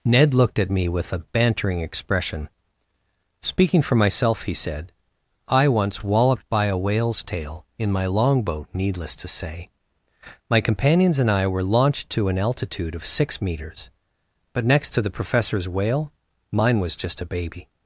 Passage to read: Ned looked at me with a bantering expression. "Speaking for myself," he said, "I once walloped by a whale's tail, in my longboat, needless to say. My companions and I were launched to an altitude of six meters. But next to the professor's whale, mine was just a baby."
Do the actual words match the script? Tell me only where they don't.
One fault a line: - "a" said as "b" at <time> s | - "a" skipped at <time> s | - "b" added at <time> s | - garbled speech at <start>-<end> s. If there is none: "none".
none